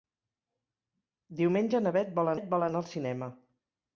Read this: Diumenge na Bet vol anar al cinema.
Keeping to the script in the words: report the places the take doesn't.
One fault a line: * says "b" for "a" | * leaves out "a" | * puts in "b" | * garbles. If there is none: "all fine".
* puts in "Bet vol"